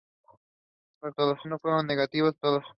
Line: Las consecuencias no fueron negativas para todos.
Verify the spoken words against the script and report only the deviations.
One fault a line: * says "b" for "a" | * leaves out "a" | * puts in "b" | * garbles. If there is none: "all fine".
* says "todos" for "consecuencias"
* leaves out "para"